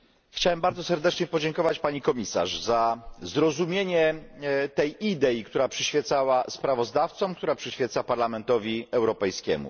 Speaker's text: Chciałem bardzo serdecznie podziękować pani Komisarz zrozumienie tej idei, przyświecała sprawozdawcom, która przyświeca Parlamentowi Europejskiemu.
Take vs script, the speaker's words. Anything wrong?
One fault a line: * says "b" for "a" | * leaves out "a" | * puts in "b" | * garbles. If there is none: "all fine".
* puts in "za"
* puts in "która"